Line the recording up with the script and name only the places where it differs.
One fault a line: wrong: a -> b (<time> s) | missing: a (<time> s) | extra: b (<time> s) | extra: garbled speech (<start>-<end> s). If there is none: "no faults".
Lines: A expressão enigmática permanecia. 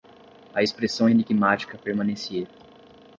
no faults